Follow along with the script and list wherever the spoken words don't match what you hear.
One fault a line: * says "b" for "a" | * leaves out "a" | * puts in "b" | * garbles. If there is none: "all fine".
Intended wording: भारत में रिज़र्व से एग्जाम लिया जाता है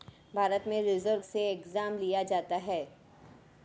all fine